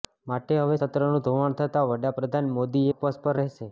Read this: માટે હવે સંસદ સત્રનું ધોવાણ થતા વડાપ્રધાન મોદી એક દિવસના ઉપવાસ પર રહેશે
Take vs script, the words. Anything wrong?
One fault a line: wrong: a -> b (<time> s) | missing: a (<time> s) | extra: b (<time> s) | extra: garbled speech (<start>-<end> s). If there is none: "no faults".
missing: સંસદ (0.8 s)
missing: એક દિવસના (2.9 s)